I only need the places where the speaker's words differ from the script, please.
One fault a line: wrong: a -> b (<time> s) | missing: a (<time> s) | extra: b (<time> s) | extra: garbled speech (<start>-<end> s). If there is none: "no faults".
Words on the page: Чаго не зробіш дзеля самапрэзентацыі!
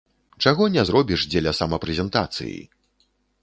no faults